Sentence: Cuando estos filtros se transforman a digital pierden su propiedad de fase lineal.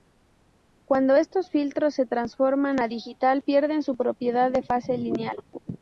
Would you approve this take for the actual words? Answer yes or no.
yes